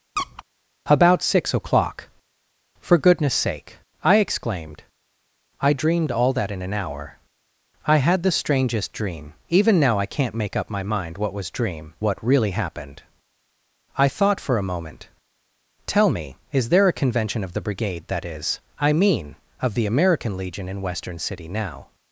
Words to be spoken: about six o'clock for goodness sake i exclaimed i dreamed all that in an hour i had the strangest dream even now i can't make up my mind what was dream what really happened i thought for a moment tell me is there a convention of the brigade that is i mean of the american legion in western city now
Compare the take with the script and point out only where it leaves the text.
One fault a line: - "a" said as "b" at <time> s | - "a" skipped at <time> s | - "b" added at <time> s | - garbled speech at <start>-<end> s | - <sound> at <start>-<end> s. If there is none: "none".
- squeak at 0.2-0.4 s